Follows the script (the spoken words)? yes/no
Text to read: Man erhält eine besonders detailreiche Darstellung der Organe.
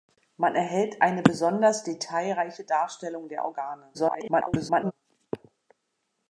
no